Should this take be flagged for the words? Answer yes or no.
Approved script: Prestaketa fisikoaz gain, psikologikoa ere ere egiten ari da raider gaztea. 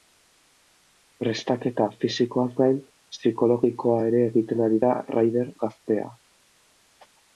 yes